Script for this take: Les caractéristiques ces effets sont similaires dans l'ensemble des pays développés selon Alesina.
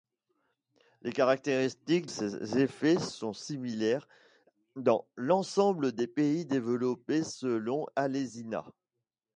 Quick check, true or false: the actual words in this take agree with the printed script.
true